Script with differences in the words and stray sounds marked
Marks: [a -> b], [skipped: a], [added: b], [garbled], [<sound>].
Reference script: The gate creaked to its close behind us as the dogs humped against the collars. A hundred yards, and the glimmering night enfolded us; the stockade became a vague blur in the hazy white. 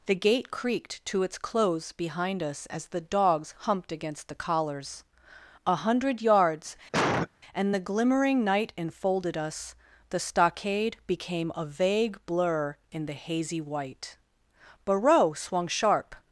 The gate creaked to its close behind us as the dogs humped against the collars. A hundred yards, [cough] and the glimmering night enfolded us; the stockade became a vague blur in the hazy white. [added: Barreau swung sharp]